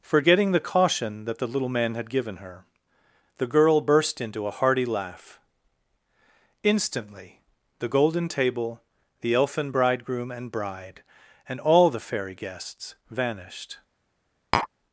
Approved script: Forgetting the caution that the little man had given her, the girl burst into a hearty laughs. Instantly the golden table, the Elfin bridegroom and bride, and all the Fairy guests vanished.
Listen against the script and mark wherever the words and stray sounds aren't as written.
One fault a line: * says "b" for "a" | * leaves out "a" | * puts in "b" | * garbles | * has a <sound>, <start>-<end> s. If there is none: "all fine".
* says "laugh" for "laughs"
* has a tap, 14.5-14.7 s